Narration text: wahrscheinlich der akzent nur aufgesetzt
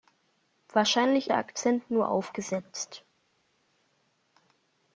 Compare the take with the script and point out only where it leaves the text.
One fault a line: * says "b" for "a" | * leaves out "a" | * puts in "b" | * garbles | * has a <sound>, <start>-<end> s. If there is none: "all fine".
all fine